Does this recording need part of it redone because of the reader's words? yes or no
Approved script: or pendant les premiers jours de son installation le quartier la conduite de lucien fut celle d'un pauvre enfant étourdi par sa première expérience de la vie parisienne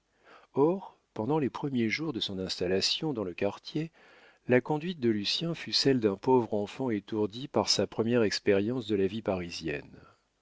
yes